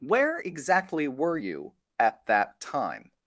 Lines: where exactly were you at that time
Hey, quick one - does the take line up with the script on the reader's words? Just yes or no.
yes